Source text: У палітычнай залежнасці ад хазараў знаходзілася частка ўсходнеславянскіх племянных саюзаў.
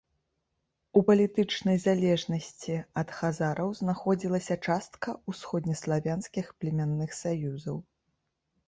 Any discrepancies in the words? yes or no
no